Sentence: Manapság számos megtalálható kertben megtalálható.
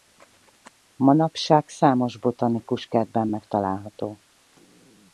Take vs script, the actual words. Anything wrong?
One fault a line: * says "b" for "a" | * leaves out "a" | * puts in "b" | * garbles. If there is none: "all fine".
* says "botanikus" for "megtalálható"